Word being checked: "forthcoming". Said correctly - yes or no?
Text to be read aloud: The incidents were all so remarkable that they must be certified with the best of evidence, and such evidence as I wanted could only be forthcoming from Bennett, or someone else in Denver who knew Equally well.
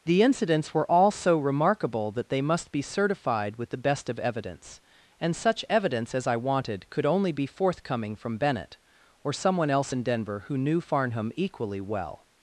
yes